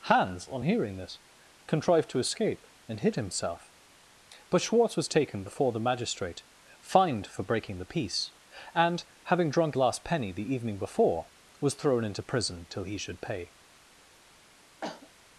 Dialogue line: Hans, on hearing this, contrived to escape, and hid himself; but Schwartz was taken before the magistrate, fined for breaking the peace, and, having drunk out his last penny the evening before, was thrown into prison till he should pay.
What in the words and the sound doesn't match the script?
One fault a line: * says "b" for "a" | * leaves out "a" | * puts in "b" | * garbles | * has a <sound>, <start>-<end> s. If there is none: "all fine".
* leaves out "out his"
* has a cough, 14.8-15.1 s